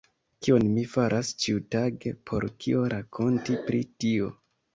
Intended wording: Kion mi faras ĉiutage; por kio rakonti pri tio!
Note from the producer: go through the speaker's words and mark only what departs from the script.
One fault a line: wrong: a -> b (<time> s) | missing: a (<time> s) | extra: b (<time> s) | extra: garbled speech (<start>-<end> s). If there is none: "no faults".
no faults